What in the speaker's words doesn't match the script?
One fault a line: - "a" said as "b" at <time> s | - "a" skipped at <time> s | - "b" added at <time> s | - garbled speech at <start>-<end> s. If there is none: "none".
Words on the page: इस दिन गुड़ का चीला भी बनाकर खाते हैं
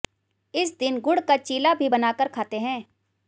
none